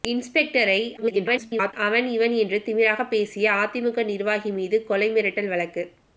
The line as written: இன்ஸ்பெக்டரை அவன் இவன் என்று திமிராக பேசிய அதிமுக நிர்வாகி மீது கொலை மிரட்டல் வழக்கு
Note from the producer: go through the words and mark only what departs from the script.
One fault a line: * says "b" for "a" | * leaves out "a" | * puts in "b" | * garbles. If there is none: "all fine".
* garbles